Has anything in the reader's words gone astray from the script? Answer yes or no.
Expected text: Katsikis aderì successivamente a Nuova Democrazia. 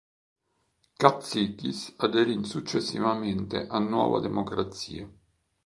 no